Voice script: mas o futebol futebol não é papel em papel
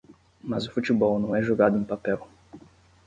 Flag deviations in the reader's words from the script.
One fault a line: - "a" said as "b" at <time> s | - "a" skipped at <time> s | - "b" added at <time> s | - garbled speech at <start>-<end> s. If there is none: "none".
- "futebol" skipped at 1.2 s
- "papel" said as "jogado" at 1.4 s